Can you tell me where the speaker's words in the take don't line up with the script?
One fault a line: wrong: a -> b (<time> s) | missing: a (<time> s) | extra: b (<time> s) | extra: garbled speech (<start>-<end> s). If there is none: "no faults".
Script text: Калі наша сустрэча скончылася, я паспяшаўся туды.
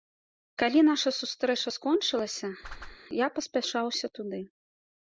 no faults